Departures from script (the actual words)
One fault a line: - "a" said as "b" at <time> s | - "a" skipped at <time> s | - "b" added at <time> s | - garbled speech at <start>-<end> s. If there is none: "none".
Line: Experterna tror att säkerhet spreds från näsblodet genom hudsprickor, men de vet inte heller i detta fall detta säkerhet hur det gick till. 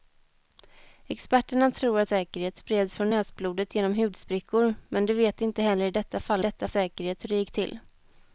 none